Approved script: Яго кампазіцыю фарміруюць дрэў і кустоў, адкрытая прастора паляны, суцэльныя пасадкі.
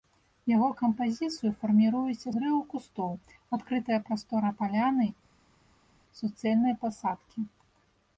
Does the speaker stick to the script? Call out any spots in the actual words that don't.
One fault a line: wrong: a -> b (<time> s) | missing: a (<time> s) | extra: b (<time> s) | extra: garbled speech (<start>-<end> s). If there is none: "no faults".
no faults